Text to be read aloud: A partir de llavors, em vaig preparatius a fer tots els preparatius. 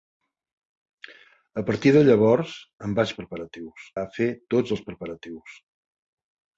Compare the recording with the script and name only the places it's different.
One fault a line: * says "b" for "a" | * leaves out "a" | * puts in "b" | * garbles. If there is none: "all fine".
all fine